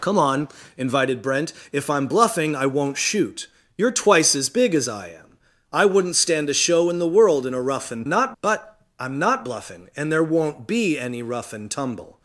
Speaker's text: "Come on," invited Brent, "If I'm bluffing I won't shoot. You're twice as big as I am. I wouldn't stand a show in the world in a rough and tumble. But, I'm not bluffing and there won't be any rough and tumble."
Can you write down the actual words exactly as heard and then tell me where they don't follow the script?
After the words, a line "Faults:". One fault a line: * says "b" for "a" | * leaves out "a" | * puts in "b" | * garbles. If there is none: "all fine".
"Come on," invited Brent, "If I'm bluffing I won't shoot. You're twice as big as I am. I wouldn't stand a show in the world in a rough and not. But, I'm not bluffing and there won't be any rough and tumble."
Faults:
* says "not" for "tumble"